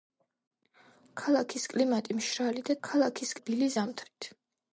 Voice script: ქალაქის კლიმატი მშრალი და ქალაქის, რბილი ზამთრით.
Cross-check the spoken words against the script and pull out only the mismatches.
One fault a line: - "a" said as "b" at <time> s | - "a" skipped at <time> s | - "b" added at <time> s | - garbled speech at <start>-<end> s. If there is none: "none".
none